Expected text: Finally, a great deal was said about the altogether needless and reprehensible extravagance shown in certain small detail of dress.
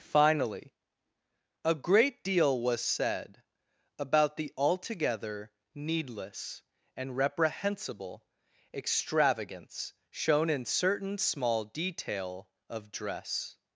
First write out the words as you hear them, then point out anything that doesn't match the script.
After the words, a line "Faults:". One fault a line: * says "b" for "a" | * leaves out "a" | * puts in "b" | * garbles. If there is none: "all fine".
Finally, a great deal was said about the altogether needless and reprehensible extravagance shown in certain small detail of dress.
Faults:
all fine